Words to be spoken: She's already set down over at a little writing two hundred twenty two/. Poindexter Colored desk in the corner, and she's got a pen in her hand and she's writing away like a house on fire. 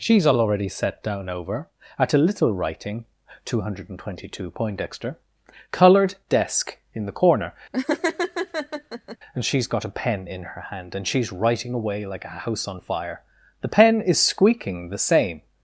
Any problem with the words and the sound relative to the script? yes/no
yes